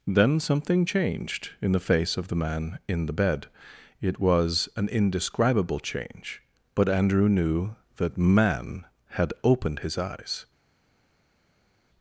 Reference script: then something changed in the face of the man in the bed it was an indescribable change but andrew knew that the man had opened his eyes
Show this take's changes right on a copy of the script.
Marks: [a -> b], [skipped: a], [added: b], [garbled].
then something changed in the face of the man in the bed it was an indescribable change but andrew knew that [skipped: the] man had opened his eyes